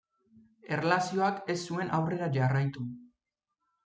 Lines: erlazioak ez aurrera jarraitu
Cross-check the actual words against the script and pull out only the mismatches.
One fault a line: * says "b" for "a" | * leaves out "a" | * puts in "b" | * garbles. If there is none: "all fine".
* puts in "zuen"